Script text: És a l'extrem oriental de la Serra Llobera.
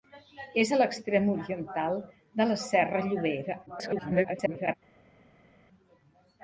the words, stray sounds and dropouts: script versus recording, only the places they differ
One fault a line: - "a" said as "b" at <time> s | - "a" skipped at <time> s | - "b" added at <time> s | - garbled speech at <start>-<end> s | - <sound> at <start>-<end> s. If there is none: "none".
- garbled speech at 3.7-4.7 s